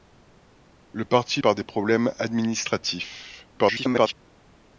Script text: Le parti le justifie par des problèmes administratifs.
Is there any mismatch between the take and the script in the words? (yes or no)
yes